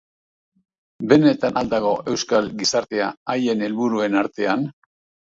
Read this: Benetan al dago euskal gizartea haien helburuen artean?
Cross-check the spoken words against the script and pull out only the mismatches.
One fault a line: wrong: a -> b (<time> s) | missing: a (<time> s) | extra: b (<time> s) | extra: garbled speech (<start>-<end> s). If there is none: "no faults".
no faults